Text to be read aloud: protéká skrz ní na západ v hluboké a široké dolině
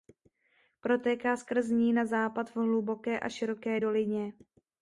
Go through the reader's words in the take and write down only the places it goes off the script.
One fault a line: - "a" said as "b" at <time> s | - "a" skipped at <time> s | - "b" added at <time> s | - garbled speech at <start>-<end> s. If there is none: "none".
none